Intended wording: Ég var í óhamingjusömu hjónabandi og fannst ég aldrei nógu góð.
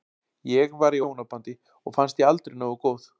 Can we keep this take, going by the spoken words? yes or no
no